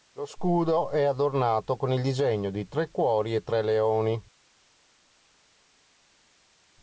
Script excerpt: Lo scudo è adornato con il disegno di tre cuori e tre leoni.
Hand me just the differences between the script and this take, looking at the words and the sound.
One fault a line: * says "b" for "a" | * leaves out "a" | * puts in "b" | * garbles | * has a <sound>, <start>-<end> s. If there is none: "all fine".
all fine